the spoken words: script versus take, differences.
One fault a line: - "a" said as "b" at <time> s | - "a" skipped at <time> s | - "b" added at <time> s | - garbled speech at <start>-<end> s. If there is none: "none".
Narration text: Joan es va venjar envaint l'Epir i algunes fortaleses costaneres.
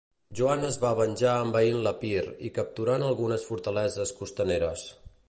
- "capturant" added at 2.6 s